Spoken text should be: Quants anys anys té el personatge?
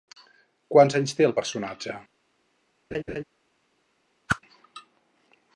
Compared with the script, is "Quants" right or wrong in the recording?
right